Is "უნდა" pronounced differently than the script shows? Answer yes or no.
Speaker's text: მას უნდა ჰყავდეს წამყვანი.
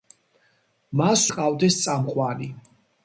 yes